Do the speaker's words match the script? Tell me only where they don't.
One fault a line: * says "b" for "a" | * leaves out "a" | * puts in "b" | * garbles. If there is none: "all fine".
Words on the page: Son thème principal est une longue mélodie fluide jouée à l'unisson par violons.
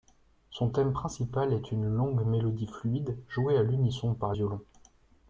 all fine